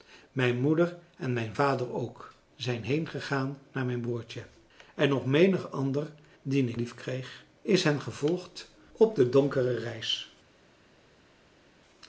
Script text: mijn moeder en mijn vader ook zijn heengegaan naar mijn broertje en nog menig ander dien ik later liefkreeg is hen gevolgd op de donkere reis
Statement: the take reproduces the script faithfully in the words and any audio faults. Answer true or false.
false